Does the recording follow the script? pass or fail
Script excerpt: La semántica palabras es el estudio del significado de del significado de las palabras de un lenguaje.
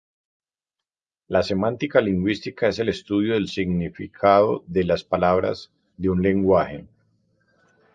fail